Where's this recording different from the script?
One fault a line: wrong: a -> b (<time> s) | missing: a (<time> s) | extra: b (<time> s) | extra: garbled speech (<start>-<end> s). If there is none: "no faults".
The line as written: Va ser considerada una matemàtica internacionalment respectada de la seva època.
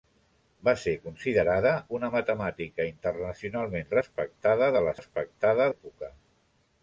wrong: seva -> respectada (5.0 s)